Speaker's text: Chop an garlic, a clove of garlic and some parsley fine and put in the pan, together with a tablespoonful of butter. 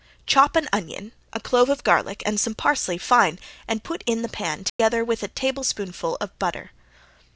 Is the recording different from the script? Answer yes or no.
yes